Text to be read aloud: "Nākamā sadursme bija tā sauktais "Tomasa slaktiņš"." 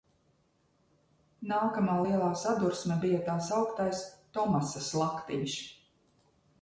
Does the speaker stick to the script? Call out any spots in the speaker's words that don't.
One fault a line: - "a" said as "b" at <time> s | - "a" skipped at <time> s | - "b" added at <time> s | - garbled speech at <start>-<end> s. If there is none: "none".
- "lielā" added at 2.0 s